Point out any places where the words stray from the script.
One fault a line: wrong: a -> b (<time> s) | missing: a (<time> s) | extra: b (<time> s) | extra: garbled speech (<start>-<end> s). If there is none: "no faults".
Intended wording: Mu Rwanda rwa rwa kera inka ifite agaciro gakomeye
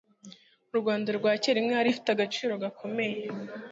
missing: rwa (1.3 s)
extra: yari (1.8 s)